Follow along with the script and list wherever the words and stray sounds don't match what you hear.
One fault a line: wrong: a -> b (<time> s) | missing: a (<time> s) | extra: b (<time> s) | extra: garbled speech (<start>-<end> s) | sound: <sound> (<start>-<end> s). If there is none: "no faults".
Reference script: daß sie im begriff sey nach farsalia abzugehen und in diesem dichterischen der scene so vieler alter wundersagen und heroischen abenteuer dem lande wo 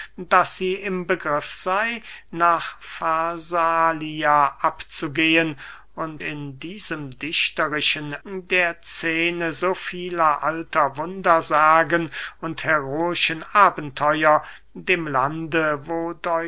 no faults